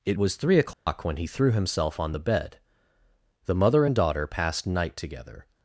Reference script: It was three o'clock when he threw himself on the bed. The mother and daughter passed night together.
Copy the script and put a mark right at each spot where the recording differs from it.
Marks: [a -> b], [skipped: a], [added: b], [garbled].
It was three o'clock when he threw himself on the bed. The mother and daughter passed night together.